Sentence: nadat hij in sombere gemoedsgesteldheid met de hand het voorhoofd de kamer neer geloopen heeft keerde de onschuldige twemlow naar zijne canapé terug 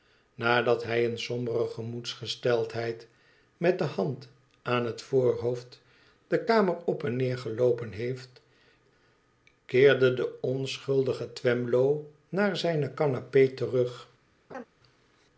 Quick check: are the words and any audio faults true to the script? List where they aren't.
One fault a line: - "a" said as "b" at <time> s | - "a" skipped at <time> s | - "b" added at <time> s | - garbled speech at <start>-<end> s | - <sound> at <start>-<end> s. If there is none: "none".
- "aan" added at 4.6 s
- "op en" added at 6.8 s
- laugh at 14.5-14.6 s